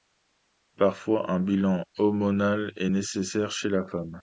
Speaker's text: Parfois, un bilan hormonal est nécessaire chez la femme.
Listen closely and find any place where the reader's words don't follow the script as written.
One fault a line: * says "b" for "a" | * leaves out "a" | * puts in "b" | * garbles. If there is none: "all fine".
all fine